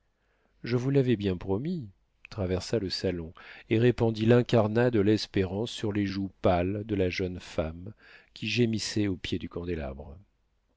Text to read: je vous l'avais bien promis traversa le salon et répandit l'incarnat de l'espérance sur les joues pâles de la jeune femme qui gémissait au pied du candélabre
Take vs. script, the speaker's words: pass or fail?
pass